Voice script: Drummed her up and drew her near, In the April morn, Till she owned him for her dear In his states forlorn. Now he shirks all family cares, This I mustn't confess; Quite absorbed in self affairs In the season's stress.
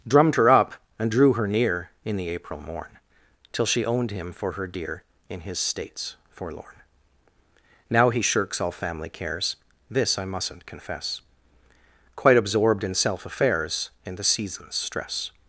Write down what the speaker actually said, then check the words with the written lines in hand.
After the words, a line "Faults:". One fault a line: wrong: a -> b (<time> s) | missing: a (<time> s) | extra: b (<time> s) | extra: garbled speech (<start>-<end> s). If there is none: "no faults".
Drummed her up and drew her near, In the April morn, Till she owned him for her dear In his states forlorn. Now he shirks all family cares, This I mustn't confess; Quite absorbed in self affairs In the season's stress.
Faults:
no faults